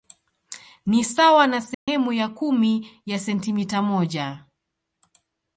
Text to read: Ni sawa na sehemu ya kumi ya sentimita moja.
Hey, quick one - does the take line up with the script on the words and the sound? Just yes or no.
no